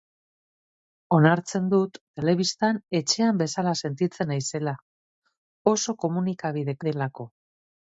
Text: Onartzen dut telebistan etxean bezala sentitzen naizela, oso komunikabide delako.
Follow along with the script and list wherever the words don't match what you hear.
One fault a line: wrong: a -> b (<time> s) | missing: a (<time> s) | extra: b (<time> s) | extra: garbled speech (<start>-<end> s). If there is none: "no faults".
no faults